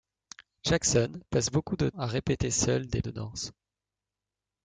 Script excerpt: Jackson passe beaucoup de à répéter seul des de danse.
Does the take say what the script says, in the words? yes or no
yes